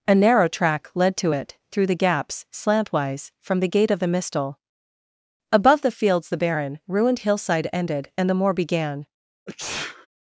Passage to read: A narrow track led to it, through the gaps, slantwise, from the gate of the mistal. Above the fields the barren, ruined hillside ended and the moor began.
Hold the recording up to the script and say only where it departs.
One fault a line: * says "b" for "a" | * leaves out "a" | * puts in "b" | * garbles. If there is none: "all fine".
all fine